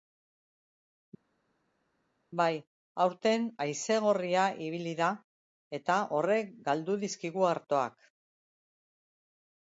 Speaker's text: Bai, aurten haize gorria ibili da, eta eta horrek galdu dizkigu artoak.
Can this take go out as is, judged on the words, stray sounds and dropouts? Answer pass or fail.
fail